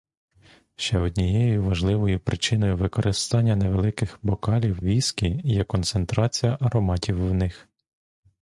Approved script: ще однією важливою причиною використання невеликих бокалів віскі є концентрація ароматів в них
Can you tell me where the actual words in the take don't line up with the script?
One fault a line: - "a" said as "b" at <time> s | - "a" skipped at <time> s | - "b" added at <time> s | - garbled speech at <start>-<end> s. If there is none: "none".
none